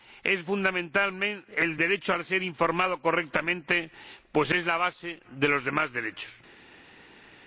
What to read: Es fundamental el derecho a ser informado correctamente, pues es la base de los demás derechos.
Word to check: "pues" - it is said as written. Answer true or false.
true